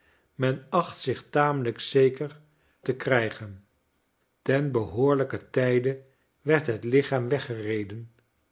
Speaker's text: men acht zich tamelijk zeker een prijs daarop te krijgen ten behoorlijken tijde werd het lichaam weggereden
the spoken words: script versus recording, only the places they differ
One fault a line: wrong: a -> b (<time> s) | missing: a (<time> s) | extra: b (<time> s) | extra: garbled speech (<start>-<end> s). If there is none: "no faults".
missing: een prijs daarop (2.4 s)